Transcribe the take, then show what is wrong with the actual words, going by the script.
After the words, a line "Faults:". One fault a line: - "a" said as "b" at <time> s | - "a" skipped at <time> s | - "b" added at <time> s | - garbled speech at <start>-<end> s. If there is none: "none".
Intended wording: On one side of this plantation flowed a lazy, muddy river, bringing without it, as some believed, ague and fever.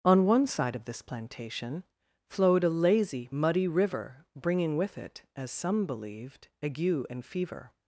On one side of this plantation flowed a lazy, muddy river, bringing with it, as some believed, ague and fever.
Faults:
- "without" said as "with" at 4.8 s